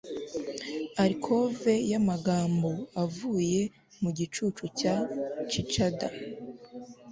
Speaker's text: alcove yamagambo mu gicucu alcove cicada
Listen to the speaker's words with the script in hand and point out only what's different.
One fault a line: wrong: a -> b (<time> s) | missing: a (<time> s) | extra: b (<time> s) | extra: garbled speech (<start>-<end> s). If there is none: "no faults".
extra: avuye (3.0 s)
wrong: alcove -> cya (4.8 s)